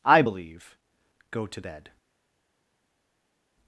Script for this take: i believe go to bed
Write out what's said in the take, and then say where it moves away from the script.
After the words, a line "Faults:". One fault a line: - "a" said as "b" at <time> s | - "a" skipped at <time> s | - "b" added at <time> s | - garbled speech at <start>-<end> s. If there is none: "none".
i believe go to bed
Faults:
none